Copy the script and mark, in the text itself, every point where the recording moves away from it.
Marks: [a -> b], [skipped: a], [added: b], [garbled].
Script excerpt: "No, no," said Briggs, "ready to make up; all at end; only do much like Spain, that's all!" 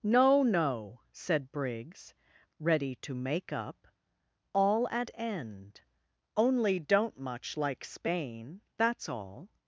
"No, no," said Briggs, "ready to make up; all at end; only [do -> don't] much like Spain, that's all!"